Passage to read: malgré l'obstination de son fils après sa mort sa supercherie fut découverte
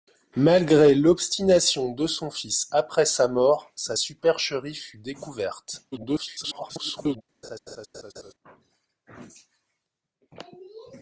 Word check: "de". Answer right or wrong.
right